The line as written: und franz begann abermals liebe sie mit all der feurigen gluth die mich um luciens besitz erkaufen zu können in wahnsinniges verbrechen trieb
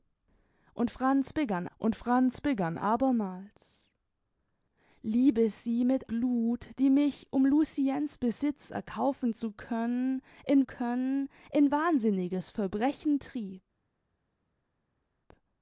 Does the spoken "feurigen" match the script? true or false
false